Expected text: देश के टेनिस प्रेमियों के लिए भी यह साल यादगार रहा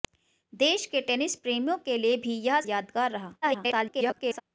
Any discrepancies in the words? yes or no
yes